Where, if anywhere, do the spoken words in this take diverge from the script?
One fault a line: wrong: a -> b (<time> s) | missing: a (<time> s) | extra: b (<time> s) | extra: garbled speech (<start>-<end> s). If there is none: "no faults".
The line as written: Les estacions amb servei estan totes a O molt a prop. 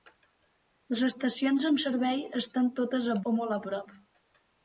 no faults